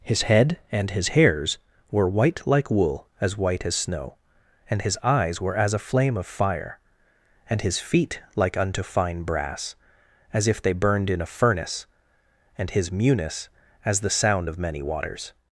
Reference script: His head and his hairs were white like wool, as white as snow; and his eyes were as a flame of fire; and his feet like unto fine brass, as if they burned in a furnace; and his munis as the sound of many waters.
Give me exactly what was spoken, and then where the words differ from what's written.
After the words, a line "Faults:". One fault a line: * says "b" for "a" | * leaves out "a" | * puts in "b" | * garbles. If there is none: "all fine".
His head and his hairs were white like wool, as white as snow; and his eyes were as a flame of fire; and his feet like unto fine brass, as if they burned in a furnace; and his munis as the sound of many waters.
Faults:
all fine